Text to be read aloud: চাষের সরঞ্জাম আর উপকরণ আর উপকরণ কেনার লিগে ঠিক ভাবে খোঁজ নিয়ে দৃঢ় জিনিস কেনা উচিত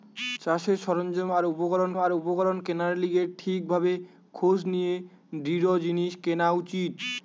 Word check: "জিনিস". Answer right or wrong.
right